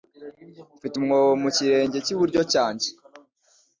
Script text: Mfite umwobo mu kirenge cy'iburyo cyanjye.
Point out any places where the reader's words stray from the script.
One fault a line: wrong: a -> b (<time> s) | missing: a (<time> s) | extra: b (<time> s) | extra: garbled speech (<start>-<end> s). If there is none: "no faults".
no faults